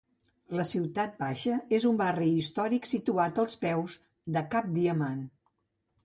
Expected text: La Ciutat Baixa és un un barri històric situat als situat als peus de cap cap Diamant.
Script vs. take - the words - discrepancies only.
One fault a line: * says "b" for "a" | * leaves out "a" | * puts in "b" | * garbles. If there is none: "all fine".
* leaves out "un"
* leaves out "situat als"
* leaves out "cap"